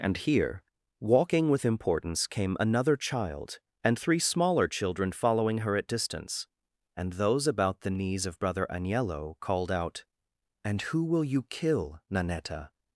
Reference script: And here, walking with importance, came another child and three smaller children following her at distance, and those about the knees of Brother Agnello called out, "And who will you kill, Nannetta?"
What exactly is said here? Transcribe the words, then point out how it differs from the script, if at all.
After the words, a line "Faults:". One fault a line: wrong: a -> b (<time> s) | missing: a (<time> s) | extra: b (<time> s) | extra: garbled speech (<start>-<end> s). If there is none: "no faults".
And here, walking with importance, came another child and three smaller children following her at distance, and those about the knees of Brother Agnello called out, "And who will you kill, Nannetta?"
Faults:
no faults